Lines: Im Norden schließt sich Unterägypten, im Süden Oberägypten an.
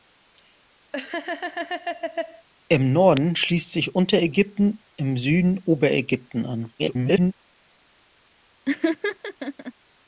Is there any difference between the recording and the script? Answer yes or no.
yes